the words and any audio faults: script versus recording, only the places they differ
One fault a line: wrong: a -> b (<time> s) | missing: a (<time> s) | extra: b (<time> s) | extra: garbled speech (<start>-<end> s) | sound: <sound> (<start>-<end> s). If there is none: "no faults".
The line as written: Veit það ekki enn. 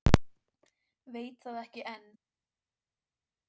no faults